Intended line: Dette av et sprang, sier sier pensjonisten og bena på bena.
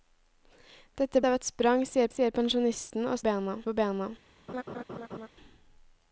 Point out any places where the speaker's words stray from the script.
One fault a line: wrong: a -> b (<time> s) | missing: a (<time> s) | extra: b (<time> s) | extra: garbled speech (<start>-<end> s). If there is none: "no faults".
no faults